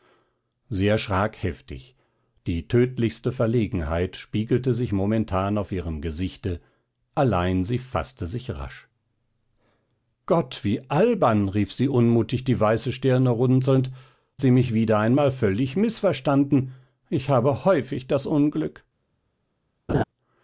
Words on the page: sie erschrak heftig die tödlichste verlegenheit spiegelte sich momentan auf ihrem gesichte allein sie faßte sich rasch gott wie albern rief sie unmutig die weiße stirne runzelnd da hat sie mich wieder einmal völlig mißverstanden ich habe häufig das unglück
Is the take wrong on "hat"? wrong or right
wrong